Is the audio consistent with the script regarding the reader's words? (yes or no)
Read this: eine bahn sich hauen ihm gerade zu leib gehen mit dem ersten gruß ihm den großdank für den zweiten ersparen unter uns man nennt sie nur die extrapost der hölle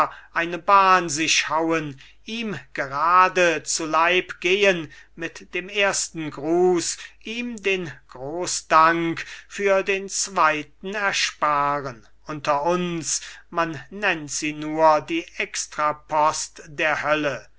yes